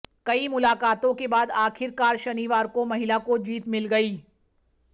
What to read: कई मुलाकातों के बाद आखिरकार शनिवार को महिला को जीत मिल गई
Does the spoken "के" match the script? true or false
true